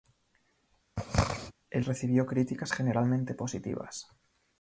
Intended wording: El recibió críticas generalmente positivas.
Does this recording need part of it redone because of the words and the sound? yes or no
yes